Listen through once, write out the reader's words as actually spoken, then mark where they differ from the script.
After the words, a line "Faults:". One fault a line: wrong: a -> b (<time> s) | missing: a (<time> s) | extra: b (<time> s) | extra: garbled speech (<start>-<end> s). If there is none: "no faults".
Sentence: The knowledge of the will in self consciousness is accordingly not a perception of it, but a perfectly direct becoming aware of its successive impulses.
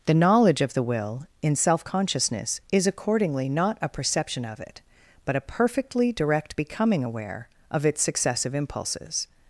The knowledge of the will in self consciousness is accordingly not a perception of it, but a perfectly direct becoming aware of its successive impulses.
Faults:
no faults